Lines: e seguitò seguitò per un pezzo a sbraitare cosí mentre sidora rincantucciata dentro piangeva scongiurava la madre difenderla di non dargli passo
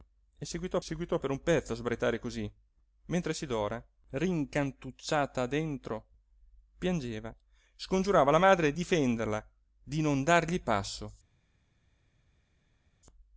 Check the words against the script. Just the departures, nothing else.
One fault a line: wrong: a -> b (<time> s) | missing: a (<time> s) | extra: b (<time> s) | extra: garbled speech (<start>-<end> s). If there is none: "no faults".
no faults